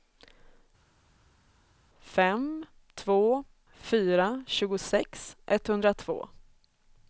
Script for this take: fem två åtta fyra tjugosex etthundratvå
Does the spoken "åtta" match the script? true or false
false